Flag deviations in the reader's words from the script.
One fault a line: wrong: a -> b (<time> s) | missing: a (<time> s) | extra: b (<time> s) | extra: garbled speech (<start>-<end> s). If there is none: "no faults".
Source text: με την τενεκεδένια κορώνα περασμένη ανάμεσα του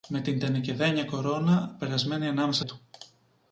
no faults